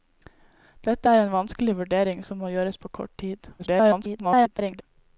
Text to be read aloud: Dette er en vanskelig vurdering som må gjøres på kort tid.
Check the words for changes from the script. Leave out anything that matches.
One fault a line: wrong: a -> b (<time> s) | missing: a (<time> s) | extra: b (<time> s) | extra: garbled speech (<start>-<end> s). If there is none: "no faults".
extra: garbled speech (3.6-4.8 s)